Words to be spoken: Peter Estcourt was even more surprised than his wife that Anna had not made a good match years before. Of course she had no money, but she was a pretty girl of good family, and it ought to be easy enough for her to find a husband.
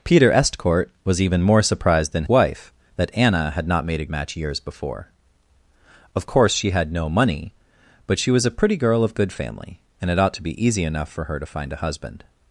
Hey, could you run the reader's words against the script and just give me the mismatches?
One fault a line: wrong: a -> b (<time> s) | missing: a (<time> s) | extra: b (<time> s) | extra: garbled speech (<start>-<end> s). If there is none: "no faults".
missing: his (2.2 s)
missing: good (4.0 s)